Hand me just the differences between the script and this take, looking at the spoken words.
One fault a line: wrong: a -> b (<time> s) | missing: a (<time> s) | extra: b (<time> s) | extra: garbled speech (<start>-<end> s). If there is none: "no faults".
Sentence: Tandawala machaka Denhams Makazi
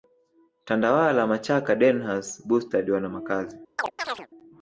extra: Bustard wana (2.5 s)